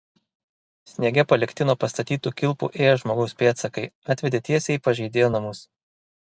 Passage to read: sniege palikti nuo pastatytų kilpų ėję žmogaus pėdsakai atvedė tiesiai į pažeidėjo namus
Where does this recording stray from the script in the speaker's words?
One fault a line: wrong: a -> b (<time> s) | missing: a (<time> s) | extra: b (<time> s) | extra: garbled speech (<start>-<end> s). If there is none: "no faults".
no faults